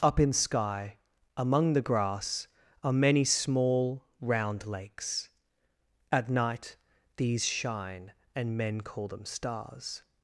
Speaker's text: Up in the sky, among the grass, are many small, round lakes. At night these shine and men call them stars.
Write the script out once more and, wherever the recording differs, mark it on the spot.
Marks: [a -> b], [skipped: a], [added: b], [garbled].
Up in [skipped: the] sky, among the grass, are many small, round lakes. At night these shine and men call them stars.